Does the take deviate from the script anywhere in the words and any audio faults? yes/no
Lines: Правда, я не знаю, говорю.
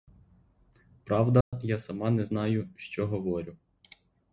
yes